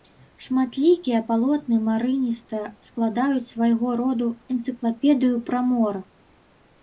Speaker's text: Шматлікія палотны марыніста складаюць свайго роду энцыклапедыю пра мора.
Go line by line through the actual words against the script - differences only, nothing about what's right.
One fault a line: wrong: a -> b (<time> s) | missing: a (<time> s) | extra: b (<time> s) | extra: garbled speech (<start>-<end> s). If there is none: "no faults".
no faults